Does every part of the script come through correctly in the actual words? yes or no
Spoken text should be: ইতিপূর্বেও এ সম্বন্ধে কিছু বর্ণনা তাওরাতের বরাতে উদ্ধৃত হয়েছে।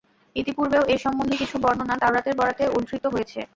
yes